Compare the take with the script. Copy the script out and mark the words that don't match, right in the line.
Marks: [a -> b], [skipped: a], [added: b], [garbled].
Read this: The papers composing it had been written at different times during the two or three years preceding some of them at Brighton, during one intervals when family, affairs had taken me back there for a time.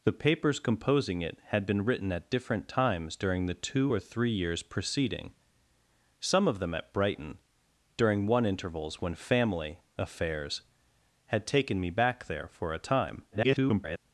The papers composing it had been written at different times during the two or three years preceding some of them at Brighton, during one intervals when family, affairs had taken me back there for a time. [garbled]